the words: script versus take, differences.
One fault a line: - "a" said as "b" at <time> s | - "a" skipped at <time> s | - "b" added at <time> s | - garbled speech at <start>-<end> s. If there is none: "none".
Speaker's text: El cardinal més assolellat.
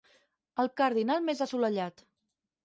none